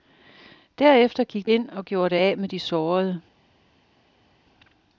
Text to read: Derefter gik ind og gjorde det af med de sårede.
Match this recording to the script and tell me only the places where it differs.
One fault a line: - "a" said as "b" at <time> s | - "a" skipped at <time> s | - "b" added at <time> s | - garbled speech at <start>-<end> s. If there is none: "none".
none